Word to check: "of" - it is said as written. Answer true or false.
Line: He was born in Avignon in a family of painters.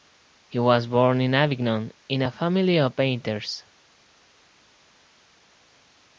true